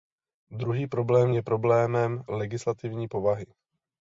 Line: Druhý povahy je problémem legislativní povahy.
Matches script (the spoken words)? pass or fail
fail